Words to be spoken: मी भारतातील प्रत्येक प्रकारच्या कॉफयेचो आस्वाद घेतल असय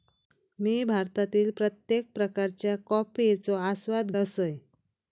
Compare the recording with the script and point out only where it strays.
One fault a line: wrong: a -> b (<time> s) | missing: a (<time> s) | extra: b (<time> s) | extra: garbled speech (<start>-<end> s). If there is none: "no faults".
missing: घेतल (4.1 s)